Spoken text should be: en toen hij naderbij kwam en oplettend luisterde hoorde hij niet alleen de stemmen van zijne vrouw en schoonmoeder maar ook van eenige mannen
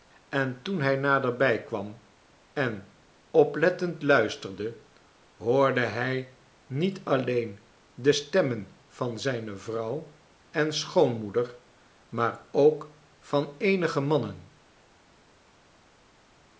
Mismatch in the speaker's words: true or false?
false